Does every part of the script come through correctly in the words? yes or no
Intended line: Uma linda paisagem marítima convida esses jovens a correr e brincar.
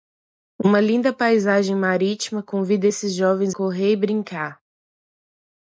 no